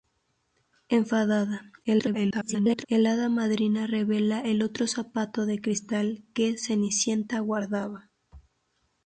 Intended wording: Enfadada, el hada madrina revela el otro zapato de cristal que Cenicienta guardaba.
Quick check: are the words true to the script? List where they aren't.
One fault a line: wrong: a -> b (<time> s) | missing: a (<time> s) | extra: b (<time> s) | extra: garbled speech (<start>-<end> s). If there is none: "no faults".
extra: garbled speech (1.8-2.9 s)